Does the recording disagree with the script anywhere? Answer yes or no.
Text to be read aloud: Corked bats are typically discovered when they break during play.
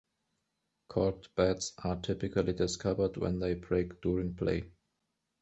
no